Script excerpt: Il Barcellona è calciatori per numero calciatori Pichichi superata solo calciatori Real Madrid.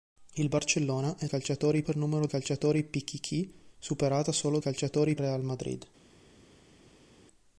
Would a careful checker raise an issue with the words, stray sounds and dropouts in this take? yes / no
no